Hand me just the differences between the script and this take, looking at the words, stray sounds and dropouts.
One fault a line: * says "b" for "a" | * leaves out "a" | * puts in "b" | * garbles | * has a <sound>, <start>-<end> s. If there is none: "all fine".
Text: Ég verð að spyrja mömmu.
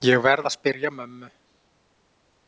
all fine